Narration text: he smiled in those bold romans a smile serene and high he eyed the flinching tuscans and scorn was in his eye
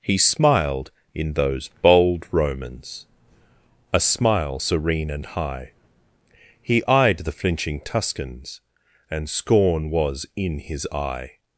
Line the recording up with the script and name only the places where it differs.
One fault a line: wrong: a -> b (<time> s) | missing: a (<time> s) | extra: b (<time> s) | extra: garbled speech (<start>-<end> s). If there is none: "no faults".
no faults